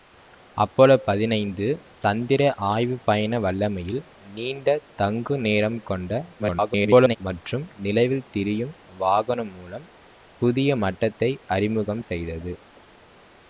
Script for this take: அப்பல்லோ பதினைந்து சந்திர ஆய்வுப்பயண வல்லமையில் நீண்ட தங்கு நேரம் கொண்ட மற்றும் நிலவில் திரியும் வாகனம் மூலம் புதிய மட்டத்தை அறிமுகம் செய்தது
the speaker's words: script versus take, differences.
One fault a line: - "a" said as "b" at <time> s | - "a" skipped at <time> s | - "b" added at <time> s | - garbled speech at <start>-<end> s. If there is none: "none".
- garbled speech at 6.4-7.2 s